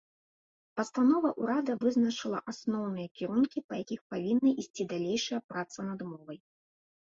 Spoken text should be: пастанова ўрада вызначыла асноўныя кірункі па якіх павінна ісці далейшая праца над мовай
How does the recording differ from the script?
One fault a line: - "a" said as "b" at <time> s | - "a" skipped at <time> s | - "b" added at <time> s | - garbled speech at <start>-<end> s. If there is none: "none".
none